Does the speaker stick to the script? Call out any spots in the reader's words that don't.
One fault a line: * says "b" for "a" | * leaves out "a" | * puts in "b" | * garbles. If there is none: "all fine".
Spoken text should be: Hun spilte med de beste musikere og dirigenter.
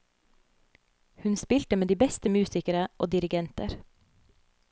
all fine